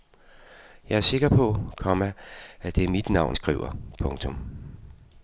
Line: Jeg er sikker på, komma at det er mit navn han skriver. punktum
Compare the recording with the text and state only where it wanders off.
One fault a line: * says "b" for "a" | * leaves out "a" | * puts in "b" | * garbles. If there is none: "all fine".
* leaves out "han"